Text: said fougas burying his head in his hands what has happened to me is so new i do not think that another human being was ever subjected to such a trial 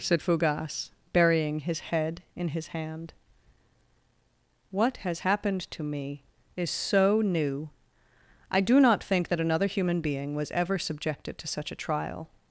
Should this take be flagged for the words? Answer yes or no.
yes